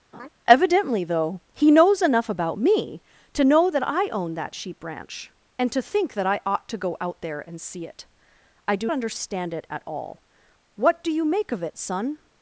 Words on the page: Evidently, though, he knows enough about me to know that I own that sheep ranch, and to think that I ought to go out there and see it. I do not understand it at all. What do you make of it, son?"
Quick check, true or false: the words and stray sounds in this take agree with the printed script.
false